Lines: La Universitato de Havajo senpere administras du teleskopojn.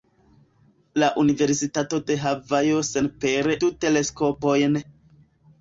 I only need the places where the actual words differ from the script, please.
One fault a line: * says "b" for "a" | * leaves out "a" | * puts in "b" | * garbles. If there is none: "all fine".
* leaves out "administras"